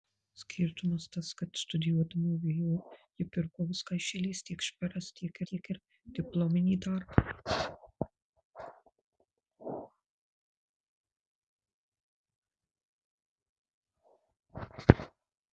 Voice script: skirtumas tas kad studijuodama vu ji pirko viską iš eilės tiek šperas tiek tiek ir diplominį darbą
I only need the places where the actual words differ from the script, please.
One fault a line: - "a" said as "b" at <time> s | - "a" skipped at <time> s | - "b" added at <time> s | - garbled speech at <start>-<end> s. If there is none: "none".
none